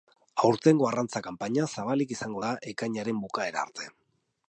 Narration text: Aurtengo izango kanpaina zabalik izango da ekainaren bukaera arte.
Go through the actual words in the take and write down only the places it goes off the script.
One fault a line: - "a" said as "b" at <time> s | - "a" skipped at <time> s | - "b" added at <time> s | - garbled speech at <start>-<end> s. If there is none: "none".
- "izango" said as "arrantza" at 0.9 s